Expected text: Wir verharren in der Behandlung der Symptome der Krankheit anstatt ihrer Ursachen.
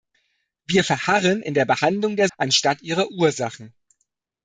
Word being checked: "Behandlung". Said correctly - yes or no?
yes